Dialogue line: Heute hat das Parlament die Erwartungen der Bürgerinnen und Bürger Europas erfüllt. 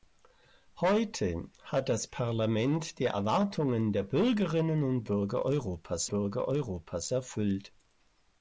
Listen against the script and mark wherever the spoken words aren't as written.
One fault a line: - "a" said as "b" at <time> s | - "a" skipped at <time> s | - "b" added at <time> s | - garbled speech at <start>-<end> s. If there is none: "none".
- "Bürger Europas" added at 6.1 s